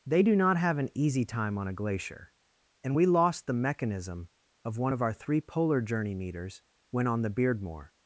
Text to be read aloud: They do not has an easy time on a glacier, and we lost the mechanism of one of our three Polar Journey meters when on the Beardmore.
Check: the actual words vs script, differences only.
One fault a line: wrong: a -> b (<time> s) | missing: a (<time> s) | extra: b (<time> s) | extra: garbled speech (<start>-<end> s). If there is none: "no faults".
wrong: has -> have (0.6 s)